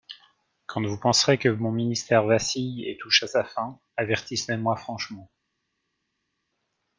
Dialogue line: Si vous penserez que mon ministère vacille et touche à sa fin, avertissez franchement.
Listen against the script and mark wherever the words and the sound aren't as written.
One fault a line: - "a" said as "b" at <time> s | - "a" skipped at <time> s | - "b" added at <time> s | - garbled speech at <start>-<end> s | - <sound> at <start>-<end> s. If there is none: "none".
- "Si" said as "Quand" at 0.7 s
- "moi" added at 4.6 s